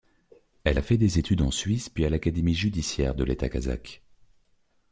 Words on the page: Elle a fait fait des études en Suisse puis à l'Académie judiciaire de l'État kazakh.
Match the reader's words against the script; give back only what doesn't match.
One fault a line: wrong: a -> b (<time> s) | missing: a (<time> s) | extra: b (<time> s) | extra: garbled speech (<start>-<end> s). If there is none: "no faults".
missing: fait (1.0 s)